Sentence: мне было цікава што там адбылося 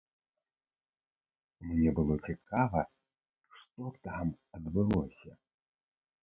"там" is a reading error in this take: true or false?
false